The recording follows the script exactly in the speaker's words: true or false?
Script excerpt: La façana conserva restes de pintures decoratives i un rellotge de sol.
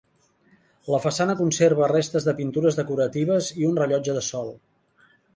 true